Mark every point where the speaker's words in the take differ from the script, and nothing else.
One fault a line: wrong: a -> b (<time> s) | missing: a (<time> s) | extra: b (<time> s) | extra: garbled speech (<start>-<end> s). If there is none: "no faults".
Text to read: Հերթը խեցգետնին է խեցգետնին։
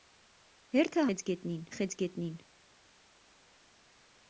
no faults